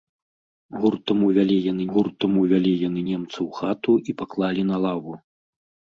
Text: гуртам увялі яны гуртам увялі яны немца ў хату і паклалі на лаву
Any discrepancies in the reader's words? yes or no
no